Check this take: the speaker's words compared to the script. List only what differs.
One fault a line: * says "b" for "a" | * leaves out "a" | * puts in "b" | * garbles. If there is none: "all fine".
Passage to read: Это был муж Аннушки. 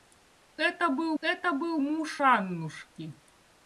* puts in "это был"